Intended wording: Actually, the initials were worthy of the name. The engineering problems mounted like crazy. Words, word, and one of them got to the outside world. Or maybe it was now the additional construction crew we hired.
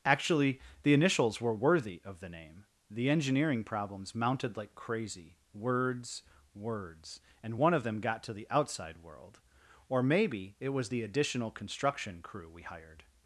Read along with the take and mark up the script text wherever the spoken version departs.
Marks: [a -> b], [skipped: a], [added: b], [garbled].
Actually, the initials were worthy of the name. The engineering problems mounted like crazy. Words, [word, -> words] and one of them got to the outside world. Or maybe it was [skipped: now] the additional construction crew we hired.